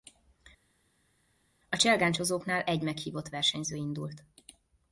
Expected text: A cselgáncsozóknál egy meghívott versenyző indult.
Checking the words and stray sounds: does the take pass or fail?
pass